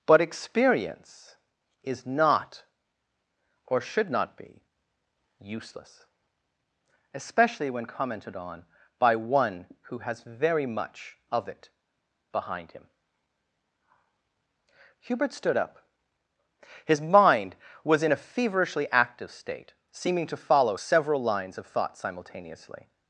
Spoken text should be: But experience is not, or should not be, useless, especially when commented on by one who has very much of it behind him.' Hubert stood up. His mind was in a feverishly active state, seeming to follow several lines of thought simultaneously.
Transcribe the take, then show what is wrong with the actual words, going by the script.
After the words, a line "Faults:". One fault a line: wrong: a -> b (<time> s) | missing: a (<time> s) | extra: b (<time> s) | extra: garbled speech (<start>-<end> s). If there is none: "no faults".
But experience is not, or should not be, useless, especially when commented on by one who has very much of it behind him.' Hubert stood up. His mind was in a feverishly active state, seeming to follow several lines of thought simultaneously.
Faults:
no faults